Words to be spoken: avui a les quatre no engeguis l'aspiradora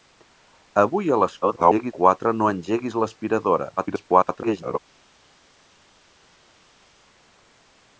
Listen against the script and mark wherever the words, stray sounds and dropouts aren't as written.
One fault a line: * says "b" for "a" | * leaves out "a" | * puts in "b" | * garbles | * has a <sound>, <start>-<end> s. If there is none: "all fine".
* garbles
* garbles